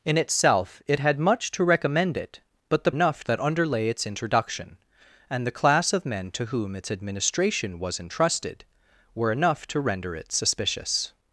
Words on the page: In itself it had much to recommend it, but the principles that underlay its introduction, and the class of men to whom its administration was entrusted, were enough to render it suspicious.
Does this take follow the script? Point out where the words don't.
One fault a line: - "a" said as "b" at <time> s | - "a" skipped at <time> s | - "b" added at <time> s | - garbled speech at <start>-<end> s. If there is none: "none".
- "principles" said as "enough" at 2.9 s